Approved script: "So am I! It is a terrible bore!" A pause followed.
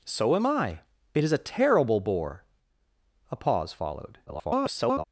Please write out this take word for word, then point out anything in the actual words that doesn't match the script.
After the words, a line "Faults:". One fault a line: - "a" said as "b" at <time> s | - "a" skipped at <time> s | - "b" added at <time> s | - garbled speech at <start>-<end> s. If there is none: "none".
"So am I! It is a terrible bore!" A pause followed. [garbled]
Faults:
- garbled speech at 4.3-5.0 s